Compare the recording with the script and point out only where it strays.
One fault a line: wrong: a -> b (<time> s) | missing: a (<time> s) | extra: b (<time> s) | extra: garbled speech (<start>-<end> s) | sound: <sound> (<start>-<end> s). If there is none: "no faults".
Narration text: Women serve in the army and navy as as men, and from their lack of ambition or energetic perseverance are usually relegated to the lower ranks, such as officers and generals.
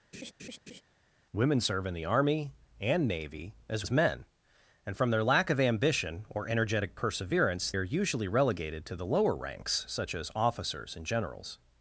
sound: laugh (0.1-0.8 s)